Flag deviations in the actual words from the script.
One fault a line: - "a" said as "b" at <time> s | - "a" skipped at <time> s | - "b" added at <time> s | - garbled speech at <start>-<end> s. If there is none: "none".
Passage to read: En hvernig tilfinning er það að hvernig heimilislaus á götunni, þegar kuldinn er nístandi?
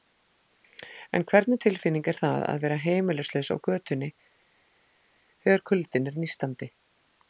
- "hvernig" said as "vera" at 2.6 s